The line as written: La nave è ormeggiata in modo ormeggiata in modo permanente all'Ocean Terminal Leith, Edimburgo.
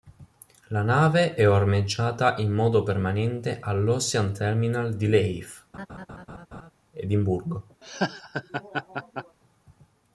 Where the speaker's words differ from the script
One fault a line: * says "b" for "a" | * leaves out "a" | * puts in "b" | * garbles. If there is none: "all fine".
* leaves out "ormeggiata in modo"
* puts in "di"